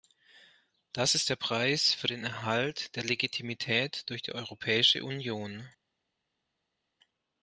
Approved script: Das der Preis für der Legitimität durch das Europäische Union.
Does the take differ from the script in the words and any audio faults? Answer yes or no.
yes